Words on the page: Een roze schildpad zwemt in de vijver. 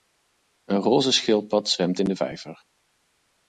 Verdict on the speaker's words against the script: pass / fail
pass